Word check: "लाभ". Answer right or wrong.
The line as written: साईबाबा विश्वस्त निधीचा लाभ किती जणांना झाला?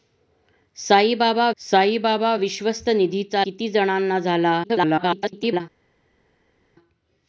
wrong